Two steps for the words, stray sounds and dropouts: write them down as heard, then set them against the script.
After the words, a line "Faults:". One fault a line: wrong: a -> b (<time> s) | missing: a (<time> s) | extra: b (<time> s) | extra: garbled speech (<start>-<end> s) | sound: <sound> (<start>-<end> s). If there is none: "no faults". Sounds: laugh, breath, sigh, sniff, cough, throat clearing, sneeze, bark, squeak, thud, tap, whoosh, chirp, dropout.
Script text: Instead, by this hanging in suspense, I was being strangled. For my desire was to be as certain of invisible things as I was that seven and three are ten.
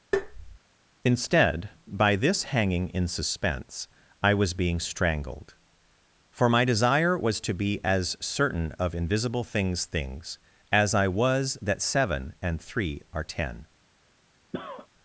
Instead, by this hanging in suspense, I was being strangled. For my desire was to be as certain of invisible things things as I was that seven and three are ten.
Faults:
sound: tap (0.1-0.6 s)
extra: things (9.9 s)
sound: cough (14.5-14.9 s)